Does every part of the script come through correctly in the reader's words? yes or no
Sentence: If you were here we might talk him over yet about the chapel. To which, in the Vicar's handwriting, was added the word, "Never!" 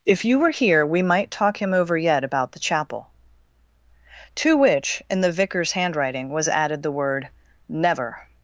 yes